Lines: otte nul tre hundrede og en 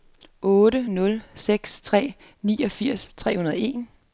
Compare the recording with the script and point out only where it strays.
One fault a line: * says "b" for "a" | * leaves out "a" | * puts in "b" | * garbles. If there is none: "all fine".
* puts in "seks tre niogfirs"